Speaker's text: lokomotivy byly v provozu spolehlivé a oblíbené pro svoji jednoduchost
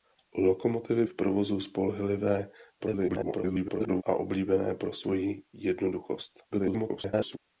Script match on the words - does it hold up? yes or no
no